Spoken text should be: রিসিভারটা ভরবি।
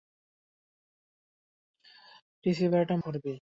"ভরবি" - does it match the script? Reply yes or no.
yes